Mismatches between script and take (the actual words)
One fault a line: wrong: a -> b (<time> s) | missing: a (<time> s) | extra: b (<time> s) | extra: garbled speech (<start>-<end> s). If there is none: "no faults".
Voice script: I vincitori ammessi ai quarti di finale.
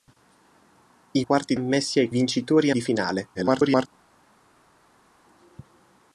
wrong: vincitori -> quarti (1.2 s)
wrong: quarti -> vincitori (2.1 s)
extra: garbled speech (3.3-3.9 s)